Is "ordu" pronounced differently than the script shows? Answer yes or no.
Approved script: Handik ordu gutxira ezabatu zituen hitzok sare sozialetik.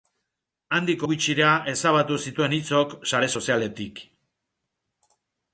yes